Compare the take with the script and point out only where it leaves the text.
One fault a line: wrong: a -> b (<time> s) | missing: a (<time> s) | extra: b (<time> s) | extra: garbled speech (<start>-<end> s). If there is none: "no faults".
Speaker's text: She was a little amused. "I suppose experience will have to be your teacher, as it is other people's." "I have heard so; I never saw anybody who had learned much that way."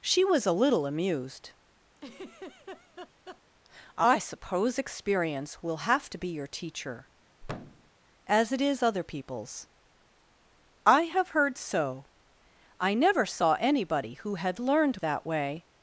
missing: much (15.0 s)